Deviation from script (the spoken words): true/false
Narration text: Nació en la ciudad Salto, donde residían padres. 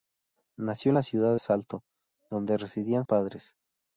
false